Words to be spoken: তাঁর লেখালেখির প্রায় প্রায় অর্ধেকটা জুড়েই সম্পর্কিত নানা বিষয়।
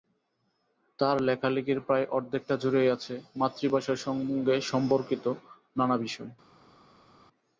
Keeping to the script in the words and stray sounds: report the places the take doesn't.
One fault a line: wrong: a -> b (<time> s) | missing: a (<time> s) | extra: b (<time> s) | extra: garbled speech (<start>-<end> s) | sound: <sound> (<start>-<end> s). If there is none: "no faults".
missing: প্রায় (2.0 s)
extra: আছে মাতৃভাষার সঙ্গে (3.0 s)